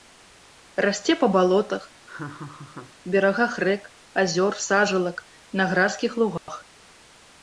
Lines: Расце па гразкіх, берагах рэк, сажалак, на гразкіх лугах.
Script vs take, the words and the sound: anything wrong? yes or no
yes